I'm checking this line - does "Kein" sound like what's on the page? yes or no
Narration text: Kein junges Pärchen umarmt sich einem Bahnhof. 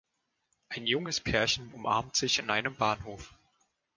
no